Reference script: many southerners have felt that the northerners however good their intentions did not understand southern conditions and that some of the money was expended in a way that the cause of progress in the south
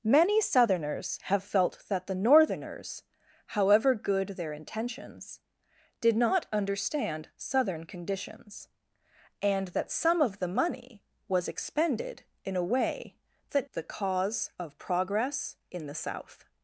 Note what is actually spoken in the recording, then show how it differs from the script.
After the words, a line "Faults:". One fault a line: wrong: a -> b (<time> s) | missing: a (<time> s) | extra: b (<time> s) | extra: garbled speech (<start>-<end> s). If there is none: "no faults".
many southerners have felt that the northerners however good their intentions did not understand southern conditions and that some of the money was expended in a way that the cause of progress in the south
Faults:
no faults